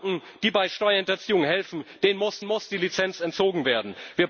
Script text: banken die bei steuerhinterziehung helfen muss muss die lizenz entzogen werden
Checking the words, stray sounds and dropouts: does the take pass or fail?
pass